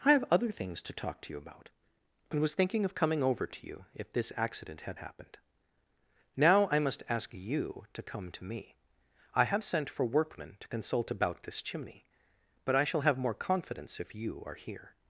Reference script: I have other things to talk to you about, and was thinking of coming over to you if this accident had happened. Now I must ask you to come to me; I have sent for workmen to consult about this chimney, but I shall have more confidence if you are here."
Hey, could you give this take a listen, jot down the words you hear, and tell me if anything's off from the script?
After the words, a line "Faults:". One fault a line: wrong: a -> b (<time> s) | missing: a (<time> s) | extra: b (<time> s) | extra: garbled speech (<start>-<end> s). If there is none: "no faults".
I have other things to talk to you about, and was thinking of coming over to you if this accident had happened. Now I must ask you to come to me; I have sent for workmen to consult about this chimney, but I shall have more confidence if you are here."
Faults:
no faults